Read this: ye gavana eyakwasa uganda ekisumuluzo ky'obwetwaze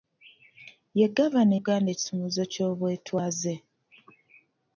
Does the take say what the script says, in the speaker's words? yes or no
no